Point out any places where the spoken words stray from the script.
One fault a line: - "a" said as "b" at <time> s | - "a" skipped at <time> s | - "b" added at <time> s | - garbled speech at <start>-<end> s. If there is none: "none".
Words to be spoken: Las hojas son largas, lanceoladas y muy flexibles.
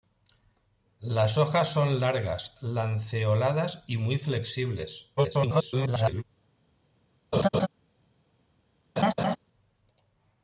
- garbled speech at 5.2-6.2 s